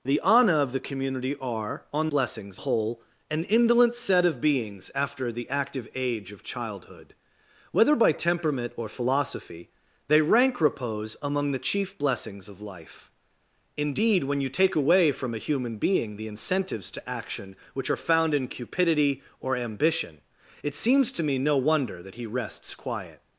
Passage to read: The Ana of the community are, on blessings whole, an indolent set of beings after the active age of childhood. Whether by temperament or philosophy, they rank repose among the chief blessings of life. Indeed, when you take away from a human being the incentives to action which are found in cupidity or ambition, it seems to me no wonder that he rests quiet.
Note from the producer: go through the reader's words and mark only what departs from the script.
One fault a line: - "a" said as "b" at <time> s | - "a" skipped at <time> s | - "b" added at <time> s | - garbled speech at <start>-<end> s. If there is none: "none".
none